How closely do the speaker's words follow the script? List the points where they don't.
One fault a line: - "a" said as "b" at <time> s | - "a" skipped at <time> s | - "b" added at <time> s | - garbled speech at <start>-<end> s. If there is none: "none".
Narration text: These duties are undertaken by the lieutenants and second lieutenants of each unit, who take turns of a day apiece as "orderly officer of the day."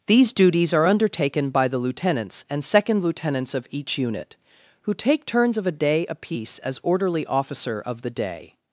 none